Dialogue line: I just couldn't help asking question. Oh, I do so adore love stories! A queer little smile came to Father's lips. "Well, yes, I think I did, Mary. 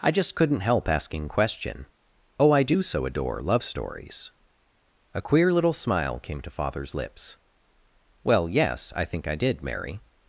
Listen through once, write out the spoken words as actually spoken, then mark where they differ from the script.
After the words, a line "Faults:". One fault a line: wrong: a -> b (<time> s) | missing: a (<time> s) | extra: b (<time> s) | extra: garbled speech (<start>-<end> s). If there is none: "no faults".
I just couldn't help asking question. Oh, I do so adore love stories! A queer little smile came to Father's lips. "Well, yes, I think I did, Mary.
Faults:
no faults